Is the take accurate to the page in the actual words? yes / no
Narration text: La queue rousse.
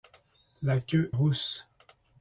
yes